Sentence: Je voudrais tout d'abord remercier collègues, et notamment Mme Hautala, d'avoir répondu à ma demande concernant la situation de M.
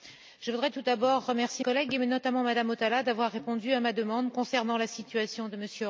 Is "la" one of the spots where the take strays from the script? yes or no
no